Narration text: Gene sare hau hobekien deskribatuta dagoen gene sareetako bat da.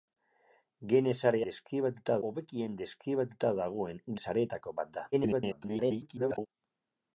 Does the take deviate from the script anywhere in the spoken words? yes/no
yes